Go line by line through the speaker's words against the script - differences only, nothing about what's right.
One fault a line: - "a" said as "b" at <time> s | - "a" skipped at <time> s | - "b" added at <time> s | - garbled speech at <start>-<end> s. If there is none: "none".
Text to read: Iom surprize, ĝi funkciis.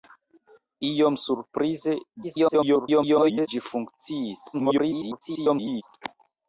- garbled speech at 2.2-3.5 s
- garbled speech at 4.5-5.8 s